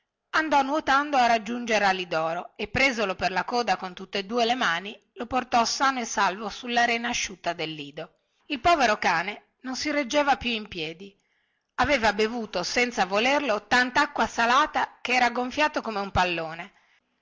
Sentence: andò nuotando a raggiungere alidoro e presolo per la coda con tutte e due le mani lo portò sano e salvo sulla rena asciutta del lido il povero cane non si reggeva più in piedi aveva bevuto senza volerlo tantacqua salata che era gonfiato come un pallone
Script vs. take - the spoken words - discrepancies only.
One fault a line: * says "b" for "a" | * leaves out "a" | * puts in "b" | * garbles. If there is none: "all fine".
all fine